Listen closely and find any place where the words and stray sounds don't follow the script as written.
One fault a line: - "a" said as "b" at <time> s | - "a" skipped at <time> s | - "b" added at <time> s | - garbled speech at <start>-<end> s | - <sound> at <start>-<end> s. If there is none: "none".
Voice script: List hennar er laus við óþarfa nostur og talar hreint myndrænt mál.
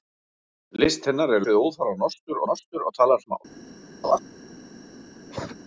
- "laus" skipped at 1.4 s
- "nostur" added at 2.5 s
- "hreint myndrænt" skipped at 3.2 s
- laugh at 4.0-4.2 s
- cough at 5.3-5.6 s